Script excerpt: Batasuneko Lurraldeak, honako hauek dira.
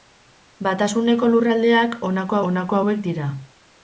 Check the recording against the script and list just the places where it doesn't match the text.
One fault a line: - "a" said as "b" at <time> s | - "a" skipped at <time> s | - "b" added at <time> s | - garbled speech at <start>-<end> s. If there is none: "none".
- "honako" added at 2.5 s